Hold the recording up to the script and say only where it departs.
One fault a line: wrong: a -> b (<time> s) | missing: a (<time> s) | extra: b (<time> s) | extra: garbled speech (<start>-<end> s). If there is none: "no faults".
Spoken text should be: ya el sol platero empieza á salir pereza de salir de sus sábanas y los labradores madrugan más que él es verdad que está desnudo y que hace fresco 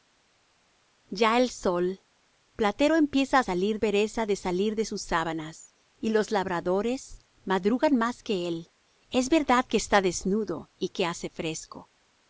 no faults